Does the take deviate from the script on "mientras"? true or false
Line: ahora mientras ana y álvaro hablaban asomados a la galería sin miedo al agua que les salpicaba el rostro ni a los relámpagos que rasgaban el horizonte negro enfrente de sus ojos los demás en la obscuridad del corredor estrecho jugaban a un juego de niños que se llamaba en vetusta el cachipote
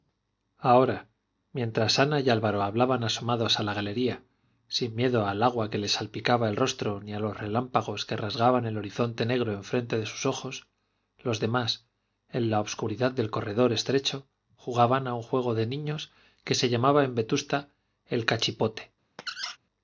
false